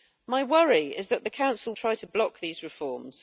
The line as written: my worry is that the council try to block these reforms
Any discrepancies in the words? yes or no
no